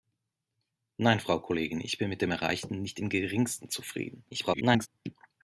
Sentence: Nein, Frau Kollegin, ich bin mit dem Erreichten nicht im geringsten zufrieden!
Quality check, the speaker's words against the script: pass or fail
fail